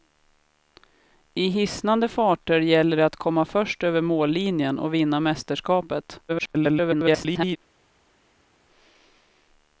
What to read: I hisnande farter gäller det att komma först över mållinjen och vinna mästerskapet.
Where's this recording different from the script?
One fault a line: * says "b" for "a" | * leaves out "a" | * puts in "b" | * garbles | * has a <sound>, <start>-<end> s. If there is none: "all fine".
* garbles